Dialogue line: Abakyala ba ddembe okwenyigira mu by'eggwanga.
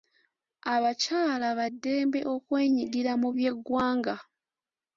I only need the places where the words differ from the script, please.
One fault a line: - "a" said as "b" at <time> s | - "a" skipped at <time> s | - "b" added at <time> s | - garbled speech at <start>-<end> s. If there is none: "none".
none